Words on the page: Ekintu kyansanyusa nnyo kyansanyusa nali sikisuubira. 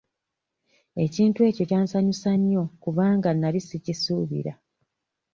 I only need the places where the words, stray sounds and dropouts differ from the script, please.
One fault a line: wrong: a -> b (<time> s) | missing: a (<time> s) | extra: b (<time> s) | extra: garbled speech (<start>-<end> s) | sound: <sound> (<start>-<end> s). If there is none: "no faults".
extra: ekyo (1.5 s)
wrong: kyansanyusa -> kubanga (2.8 s)